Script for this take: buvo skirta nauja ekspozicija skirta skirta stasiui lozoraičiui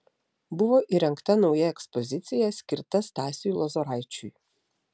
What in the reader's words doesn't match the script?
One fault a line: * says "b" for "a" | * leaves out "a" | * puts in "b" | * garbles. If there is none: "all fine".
* says "įrengta" for "skirta"
* leaves out "skirta"